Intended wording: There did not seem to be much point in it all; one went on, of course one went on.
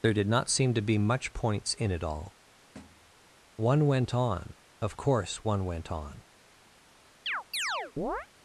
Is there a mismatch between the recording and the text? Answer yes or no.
yes